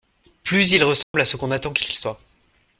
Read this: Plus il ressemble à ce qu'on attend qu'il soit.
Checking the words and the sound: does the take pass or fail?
fail